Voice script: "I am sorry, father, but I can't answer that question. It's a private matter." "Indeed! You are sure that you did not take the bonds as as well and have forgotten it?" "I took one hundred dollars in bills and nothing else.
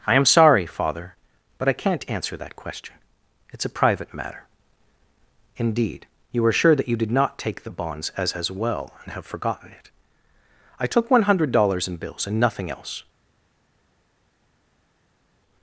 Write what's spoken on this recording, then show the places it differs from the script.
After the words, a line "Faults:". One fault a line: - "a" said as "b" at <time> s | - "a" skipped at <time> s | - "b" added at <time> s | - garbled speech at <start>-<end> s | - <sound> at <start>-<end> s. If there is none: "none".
"I am sorry, father, but I can't answer that question. It's a private matter." "Indeed! You are sure that you did not take the bonds as as well and have forgotten it?" "I took one hundred dollars in bills and nothing else.
Faults:
none